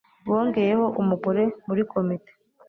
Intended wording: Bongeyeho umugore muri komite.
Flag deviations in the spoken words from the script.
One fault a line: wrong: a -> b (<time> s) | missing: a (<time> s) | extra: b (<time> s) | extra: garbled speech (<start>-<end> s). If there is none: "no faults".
no faults